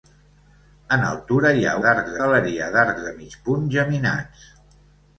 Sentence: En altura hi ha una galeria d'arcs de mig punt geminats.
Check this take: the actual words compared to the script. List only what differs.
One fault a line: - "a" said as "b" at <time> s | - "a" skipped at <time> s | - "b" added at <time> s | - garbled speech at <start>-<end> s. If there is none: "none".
- "una" said as "d'arcs" at 1.9 s